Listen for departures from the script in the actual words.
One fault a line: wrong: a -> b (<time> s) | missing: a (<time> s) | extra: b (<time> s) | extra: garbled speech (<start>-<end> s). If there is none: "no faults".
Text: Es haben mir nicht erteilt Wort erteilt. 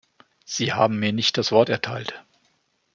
wrong: Es -> Sie (0.5 s)
wrong: erteilt -> das (1.4 s)